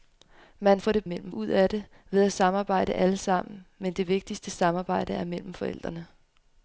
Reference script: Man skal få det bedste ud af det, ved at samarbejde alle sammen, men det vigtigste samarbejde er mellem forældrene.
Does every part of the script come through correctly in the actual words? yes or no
no